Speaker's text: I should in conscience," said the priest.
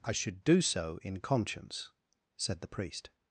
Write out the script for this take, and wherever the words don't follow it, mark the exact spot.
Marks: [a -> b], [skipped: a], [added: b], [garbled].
I should [added: do so] in conscience," said the priest.